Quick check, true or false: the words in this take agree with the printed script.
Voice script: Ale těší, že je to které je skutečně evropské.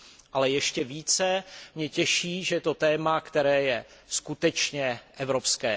false